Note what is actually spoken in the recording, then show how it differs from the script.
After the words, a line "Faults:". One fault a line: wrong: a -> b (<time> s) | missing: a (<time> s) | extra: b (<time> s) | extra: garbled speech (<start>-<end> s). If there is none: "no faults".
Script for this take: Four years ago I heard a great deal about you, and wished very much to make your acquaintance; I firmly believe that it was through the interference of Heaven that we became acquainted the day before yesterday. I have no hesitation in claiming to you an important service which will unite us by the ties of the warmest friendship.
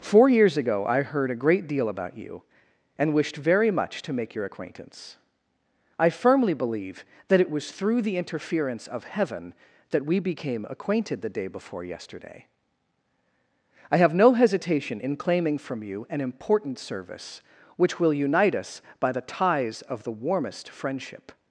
Four years ago I heard a great deal about you, and wished very much to make your acquaintance; I firmly believe that it was through the interference of Heaven that we became acquainted the day before yesterday. I have no hesitation in claiming from you an important service which will unite us by the ties of the warmest friendship.
Faults:
wrong: to -> from (15.6 s)